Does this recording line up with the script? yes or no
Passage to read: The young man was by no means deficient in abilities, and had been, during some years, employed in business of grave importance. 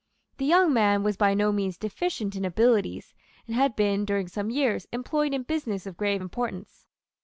yes